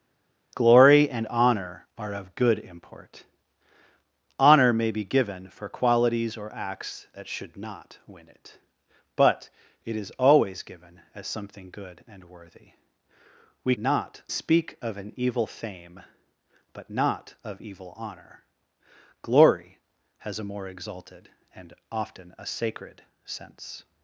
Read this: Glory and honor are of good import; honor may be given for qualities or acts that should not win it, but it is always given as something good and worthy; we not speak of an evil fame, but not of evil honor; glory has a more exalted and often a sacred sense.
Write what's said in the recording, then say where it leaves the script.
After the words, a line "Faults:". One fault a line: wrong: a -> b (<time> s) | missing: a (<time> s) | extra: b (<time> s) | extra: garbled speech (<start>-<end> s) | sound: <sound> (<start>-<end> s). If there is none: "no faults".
Glory and honor are of good import; honor may be given for qualities or acts that should not win it, but it is always given as something good and worthy; we not speak of an evil fame, but not of evil honor; glory has a more exalted and often a sacred sense.
Faults:
no faults